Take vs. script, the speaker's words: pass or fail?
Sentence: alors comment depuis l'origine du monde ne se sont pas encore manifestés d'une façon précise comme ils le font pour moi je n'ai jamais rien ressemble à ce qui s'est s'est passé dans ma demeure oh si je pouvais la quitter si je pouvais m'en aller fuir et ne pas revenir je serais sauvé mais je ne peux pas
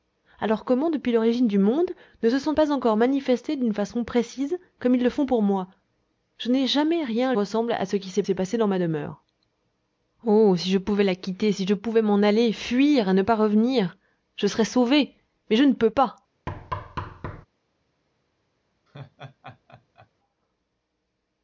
pass